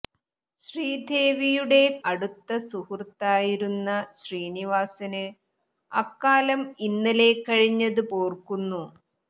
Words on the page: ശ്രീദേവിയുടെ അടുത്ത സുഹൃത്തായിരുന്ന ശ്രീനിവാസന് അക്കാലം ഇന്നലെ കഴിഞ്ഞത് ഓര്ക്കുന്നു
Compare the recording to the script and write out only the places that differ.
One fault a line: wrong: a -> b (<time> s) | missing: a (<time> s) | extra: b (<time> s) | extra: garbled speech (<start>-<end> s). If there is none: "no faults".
no faults